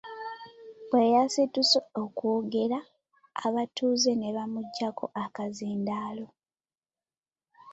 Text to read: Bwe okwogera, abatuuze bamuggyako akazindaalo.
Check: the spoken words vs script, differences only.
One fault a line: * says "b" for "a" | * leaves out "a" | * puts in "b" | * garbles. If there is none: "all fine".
* puts in "yasituse"
* puts in "ne"